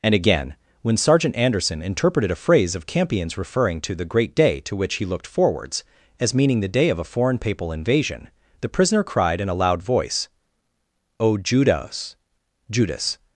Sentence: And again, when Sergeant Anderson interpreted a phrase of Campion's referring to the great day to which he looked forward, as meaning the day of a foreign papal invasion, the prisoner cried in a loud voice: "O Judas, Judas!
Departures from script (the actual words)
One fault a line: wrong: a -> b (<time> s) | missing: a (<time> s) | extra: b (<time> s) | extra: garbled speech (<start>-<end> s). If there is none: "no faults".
wrong: forward -> forwards (5.3 s)